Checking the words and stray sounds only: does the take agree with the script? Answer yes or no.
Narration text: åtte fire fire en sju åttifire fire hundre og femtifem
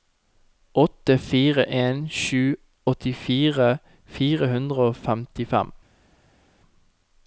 no